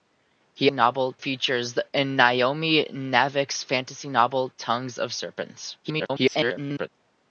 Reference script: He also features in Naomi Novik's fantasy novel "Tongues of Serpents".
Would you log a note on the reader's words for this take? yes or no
yes